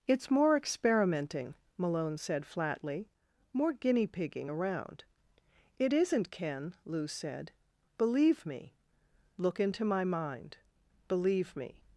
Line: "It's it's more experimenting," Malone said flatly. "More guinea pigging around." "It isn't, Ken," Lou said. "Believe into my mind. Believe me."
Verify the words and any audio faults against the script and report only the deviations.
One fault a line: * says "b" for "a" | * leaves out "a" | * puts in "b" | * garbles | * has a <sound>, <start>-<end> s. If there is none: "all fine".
* leaves out "it's"
* puts in "me Look"